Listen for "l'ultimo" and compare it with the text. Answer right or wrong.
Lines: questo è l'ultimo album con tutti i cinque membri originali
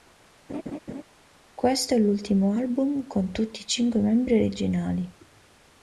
right